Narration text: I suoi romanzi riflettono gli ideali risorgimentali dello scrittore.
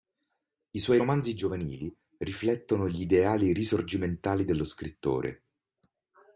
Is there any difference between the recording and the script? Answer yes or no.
yes